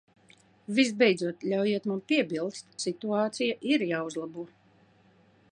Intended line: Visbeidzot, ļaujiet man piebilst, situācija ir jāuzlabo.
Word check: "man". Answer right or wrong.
right